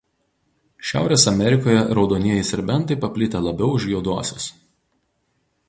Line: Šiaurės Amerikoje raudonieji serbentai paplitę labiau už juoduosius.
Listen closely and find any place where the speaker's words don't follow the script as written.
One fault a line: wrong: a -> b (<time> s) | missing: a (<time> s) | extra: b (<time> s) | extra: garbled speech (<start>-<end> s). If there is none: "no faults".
no faults